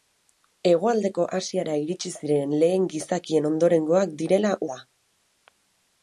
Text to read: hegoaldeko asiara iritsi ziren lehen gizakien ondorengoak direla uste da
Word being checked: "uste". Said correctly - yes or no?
no